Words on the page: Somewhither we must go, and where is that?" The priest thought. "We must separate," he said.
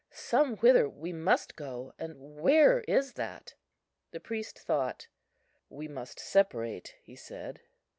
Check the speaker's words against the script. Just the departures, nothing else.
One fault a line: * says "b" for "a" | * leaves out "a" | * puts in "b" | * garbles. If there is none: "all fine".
all fine